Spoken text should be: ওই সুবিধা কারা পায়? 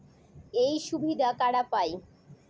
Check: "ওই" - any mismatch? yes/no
yes